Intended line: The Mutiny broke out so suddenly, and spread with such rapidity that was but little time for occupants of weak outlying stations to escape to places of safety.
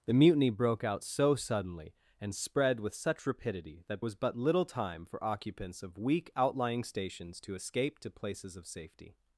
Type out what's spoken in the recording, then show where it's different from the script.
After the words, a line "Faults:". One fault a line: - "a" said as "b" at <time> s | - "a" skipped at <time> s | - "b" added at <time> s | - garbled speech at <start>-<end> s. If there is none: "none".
The Mutiny broke out so suddenly, and spread with such rapidity that was but little time for occupants of weak outlying stations to escape to places of safety.
Faults:
none